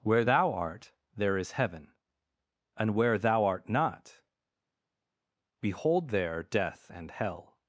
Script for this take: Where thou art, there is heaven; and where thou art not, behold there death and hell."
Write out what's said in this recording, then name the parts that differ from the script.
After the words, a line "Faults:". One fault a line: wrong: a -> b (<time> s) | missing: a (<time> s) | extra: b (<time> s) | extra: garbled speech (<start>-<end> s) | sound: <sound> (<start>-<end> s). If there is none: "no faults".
Where thou art, there is heaven; and where thou art not, behold there death and hell."
Faults:
no faults